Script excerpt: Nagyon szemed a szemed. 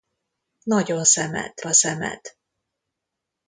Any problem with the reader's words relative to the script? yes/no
no